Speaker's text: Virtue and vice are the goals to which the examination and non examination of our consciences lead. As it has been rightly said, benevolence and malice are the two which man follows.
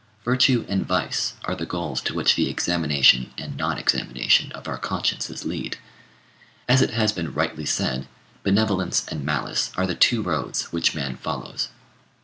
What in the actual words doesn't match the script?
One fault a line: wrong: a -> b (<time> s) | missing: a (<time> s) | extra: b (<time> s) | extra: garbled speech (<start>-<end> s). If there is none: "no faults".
extra: roads (10.2 s)